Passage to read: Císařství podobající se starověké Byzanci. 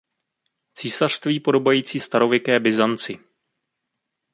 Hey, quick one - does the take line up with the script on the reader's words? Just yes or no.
no